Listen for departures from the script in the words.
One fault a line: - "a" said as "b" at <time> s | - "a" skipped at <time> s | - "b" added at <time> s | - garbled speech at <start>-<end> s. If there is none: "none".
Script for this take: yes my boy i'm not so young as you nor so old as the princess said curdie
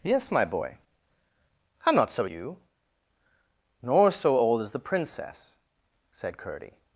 - "young as" skipped at 2.2 s